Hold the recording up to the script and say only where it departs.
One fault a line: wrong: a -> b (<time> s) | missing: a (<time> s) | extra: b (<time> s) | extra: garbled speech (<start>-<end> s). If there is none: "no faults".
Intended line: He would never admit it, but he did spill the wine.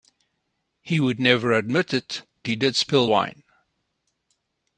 missing: but (2.2 s)
missing: the (3.1 s)